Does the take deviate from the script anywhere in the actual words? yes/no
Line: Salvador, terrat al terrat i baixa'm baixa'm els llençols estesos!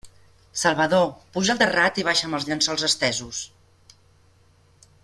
yes